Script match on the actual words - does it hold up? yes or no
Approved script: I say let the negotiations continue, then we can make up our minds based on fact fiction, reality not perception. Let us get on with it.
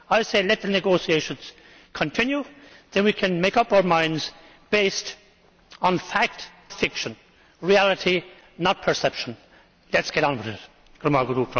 yes